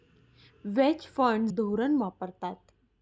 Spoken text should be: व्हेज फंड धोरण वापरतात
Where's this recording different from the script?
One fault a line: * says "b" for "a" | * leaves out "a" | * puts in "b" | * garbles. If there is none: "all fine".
all fine